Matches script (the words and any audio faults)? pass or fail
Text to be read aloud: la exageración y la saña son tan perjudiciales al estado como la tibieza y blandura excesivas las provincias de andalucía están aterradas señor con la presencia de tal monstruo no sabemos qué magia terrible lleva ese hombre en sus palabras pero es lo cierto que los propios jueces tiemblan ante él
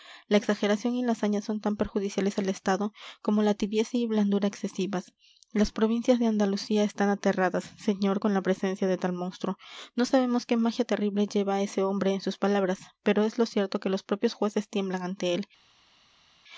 pass